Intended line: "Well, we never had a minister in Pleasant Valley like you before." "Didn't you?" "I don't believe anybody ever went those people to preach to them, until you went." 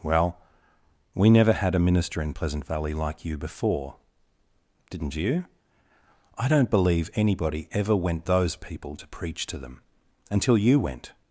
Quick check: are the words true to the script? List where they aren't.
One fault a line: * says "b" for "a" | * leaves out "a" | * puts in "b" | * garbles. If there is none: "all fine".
all fine